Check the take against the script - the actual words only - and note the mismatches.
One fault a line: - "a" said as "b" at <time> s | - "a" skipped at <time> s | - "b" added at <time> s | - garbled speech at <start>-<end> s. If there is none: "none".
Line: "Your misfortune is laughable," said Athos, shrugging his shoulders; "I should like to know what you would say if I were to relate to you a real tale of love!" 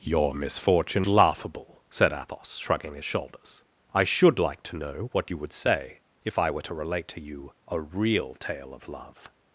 - "is" skipped at 1.1 s